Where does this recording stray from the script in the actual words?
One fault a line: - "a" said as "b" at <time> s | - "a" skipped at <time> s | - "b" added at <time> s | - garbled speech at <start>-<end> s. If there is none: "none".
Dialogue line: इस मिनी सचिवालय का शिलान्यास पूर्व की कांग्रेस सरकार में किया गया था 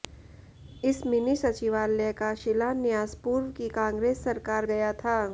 - "में किया" skipped at 4.7 s